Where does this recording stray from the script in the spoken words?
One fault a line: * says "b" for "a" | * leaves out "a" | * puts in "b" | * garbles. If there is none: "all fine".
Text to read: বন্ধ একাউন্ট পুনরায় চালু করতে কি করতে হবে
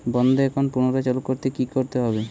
all fine